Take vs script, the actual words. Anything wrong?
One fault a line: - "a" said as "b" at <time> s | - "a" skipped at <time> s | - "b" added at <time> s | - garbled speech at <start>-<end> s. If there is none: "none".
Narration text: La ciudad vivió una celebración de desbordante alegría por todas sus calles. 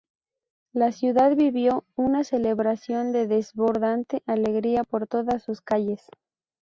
none